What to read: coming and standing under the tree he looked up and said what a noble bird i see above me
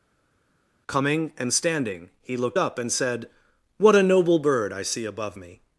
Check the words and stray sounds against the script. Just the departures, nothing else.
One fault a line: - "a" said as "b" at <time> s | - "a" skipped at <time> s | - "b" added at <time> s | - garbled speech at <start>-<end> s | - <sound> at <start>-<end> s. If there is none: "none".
- "under the tree" skipped at 2.1 s